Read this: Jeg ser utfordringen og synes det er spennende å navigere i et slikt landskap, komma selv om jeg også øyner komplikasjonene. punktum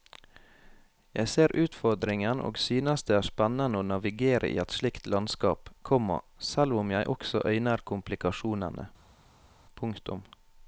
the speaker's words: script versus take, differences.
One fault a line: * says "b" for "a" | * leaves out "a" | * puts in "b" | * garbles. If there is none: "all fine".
all fine